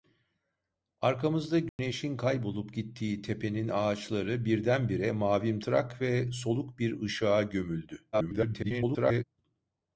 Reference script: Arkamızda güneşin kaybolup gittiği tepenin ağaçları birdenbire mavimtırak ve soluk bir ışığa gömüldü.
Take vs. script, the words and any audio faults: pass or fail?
fail